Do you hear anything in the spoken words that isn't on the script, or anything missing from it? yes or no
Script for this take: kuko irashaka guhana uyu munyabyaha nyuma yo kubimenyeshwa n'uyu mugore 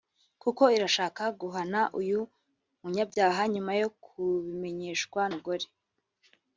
yes